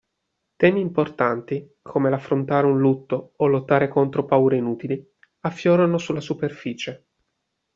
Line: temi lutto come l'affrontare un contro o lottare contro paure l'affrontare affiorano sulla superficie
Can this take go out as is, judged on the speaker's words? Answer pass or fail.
fail